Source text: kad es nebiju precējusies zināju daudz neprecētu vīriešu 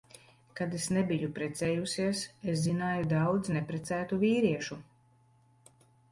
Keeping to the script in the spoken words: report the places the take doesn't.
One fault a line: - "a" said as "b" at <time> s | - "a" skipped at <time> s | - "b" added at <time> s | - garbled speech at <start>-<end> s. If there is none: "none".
- "es" added at 2.5 s